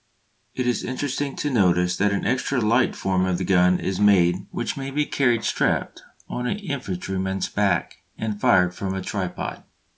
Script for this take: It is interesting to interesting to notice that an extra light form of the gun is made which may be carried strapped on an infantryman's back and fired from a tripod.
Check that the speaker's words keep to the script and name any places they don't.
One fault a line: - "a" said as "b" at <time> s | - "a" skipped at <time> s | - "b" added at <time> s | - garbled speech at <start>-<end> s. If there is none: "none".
- "interesting to" skipped at 1.5 s